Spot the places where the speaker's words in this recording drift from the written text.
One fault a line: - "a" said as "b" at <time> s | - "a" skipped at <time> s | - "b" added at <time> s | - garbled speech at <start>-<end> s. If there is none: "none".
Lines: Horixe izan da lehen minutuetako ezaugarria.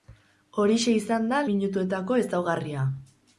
- "lehen" skipped at 1.4 s